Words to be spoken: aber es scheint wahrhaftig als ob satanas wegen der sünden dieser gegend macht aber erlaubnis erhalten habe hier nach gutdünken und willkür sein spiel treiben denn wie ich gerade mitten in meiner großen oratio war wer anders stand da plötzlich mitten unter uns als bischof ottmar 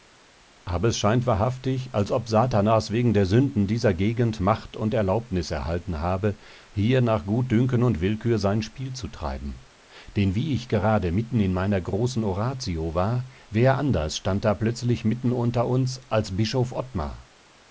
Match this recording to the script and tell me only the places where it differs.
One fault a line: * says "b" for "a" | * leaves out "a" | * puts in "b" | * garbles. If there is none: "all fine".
* says "und" for "aber"
* puts in "zu"